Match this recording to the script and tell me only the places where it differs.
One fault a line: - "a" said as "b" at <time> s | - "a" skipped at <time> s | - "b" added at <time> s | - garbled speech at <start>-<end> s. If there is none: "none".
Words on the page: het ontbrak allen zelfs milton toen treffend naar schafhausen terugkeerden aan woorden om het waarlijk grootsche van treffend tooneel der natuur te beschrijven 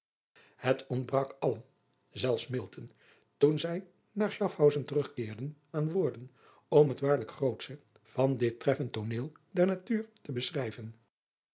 - "treffend" said as "zij" at 3.6 s
- "dit" added at 8.4 s